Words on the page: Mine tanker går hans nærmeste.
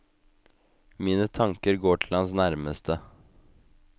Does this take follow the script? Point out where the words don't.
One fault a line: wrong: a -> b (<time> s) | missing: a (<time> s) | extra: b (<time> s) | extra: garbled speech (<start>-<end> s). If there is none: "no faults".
extra: til (2.0 s)